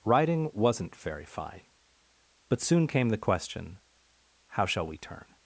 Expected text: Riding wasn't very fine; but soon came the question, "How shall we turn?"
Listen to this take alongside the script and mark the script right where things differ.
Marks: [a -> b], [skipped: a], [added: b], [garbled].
Riding wasn't very fine; but soon came the question, "How shall we turn?"